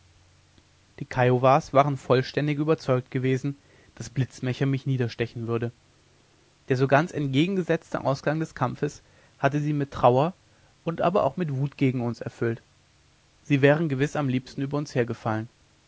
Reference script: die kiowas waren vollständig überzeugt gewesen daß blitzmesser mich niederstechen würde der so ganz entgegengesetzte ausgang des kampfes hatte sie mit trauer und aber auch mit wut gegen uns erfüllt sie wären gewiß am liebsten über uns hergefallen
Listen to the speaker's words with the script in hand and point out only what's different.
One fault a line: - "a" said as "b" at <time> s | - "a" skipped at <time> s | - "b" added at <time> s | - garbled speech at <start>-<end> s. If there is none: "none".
none